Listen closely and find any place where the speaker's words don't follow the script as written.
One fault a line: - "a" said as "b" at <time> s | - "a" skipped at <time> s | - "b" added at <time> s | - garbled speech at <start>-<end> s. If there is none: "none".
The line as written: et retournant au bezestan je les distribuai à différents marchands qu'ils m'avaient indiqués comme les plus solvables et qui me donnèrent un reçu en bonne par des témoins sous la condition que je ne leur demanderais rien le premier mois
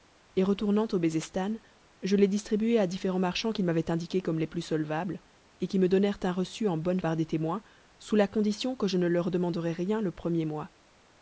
none